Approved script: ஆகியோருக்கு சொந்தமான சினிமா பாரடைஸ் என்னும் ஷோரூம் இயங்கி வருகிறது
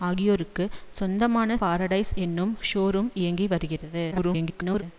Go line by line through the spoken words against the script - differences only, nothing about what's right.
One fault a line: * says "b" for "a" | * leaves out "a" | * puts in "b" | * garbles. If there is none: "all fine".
* leaves out "சினிமா"
* garbles